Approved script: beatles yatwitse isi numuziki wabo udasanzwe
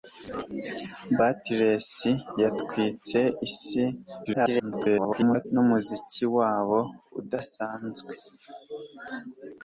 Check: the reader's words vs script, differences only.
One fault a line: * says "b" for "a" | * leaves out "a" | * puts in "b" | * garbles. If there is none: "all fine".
* garbles